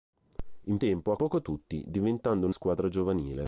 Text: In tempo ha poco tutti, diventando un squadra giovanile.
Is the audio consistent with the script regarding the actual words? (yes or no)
yes